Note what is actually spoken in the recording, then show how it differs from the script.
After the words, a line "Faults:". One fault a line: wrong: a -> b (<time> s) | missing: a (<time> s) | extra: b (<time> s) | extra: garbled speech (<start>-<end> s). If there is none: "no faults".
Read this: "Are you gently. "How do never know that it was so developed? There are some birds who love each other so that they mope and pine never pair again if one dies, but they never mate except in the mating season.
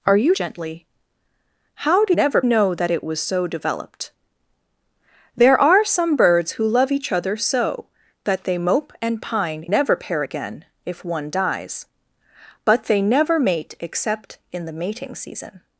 "Are you gently. "How do never know that it was so developed? There are some birds who love each other so that they mope and pine never pair again if one dies, but they never mate except in the mating season.
Faults:
no faults